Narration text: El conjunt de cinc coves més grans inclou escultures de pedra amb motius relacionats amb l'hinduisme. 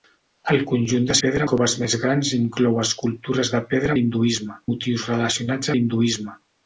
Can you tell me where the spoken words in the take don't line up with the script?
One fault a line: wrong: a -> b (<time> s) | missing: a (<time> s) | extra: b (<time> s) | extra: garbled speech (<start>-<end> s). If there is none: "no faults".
wrong: cinc -> pedra (1.2 s)
wrong: amb -> l'hinduisme (4.0 s)
missing: amb (5.8 s)